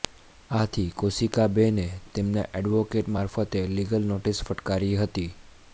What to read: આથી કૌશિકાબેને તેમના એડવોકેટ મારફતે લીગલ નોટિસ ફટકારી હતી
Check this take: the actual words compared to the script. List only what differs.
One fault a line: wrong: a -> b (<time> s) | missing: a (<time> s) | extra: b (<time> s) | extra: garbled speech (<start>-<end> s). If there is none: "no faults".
no faults